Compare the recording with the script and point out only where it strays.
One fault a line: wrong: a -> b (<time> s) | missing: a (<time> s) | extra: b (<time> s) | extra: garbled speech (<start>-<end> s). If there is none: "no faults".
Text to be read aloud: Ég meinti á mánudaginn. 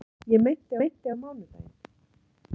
extra: meinti (0.8 s)